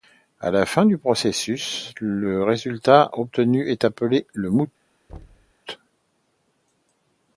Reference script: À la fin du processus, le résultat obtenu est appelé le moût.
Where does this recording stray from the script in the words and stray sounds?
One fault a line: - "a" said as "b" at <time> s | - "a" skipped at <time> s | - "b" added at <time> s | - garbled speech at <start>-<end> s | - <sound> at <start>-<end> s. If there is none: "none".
- thud at 5.1-5.5 s